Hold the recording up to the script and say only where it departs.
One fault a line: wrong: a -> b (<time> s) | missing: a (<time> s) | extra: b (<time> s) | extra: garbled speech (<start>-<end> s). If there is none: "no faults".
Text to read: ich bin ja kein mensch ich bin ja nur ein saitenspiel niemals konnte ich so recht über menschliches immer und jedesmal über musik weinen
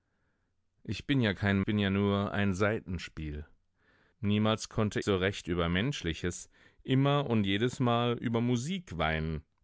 missing: mensch ich (1.6 s)
missing: ich (5.0 s)